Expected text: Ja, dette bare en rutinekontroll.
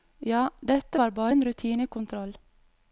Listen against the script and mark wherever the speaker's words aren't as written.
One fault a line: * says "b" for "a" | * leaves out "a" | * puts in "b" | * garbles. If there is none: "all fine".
* puts in "var"